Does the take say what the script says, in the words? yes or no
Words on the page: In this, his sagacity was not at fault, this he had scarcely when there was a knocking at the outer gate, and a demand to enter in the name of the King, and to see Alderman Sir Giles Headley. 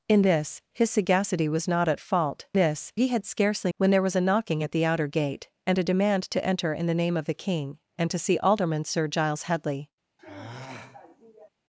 yes